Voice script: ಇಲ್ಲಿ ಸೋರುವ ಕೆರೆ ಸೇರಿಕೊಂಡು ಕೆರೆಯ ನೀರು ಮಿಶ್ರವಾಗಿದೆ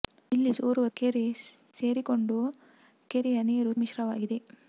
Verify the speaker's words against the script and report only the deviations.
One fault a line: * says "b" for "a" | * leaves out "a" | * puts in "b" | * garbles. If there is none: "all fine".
all fine